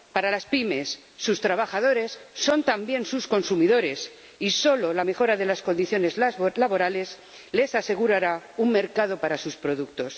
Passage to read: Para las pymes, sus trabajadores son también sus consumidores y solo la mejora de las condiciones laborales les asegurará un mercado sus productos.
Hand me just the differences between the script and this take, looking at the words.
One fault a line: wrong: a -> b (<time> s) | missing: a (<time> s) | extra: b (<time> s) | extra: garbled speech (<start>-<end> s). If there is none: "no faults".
extra: para (9.2 s)